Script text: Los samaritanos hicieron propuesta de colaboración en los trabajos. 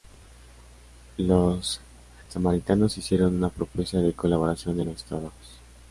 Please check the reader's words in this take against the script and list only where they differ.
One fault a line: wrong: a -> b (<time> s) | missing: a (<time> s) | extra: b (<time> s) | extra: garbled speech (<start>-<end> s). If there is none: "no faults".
extra: una (3.4 s)